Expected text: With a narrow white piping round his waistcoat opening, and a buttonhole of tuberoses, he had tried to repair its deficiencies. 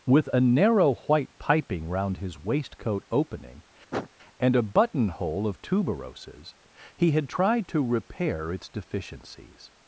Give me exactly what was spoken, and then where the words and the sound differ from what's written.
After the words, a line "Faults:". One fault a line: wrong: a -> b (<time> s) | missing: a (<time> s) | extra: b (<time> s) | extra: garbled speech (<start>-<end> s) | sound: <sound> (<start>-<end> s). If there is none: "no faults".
With a narrow white piping round his waistcoat opening, and a buttonhole of tuberoses, he had tried to repair its deficiencies.
Faults:
sound: sniff (3.9-4.1 s)